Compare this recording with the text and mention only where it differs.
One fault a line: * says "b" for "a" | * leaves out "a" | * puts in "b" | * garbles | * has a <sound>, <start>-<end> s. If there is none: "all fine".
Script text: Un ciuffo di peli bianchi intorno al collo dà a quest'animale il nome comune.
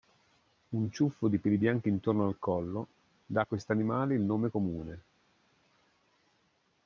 all fine